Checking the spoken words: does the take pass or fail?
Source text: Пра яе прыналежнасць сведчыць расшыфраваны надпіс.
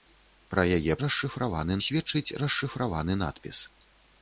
fail